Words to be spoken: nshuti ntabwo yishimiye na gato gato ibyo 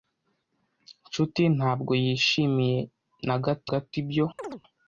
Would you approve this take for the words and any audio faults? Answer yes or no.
no